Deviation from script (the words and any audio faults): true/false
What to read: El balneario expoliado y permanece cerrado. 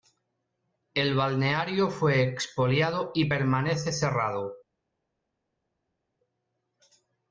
true